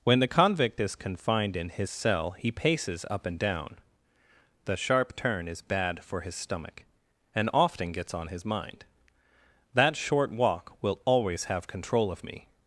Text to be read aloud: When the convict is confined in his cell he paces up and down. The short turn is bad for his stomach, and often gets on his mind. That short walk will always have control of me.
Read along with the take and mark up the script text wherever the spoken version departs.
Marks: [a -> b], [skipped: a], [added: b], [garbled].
When the convict is confined in his cell he paces up and down. The [short -> sharp] turn is bad for his stomach, and often gets on his mind. That short walk will always have control of me.